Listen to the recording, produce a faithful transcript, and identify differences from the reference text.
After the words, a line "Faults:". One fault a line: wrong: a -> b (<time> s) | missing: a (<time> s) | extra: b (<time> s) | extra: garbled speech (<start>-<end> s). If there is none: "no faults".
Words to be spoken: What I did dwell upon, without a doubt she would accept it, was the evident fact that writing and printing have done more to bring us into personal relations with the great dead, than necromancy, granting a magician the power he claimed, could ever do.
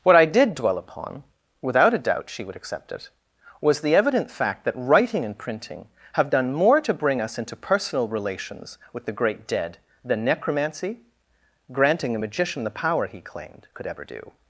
What I did dwell upon, without a doubt she would accept it, was the evident fact that writing and printing have done more to bring us into personal relations with the great dead, than necromancy, granting a magician the power he claimed, could ever do.
Faults:
no faults